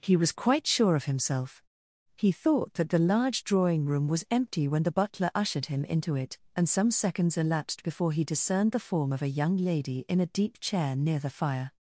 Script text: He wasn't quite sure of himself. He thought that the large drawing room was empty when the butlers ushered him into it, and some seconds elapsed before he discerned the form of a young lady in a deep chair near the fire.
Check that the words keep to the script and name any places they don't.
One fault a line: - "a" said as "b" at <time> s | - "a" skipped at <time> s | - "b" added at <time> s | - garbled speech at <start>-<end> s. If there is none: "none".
- "wasn't" said as "was" at 0.1 s
- "butlers" said as "butler" at 4.9 s